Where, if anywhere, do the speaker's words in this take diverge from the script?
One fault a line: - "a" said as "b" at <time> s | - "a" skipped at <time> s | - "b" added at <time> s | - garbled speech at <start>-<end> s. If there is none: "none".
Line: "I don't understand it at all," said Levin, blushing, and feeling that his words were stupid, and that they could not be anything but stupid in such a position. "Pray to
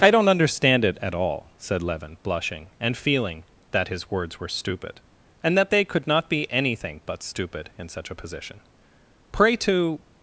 none